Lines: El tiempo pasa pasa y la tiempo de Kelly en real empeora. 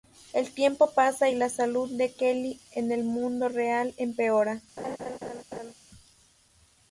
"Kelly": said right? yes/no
yes